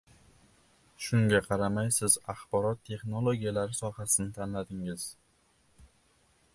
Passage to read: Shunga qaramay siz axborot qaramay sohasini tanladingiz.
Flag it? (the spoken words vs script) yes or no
yes